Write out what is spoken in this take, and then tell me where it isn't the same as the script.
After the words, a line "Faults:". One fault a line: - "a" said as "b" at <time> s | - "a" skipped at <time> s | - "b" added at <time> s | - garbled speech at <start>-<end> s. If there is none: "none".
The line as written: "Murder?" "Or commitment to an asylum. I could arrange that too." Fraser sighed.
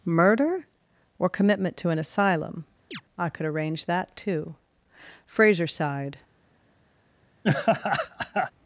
"Murder?" "Or commitment to an asylum. I could arrange that too." Fraser sighed.
Faults:
none